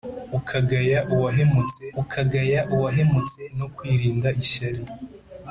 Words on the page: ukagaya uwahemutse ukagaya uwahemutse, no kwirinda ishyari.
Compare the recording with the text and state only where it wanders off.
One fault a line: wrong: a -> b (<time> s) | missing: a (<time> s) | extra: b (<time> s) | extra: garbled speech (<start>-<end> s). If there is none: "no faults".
no faults